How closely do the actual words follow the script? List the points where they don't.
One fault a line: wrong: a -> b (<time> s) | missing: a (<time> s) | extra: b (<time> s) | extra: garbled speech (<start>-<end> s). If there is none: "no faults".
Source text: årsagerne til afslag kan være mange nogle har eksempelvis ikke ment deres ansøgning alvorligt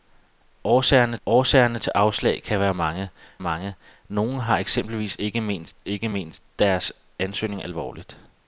extra: årsagerne (1.2 s)
extra: mange (3.4 s)
extra: ikke ment (5.9 s)